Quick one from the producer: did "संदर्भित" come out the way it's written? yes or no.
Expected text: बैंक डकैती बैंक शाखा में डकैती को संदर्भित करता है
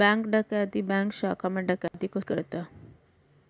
no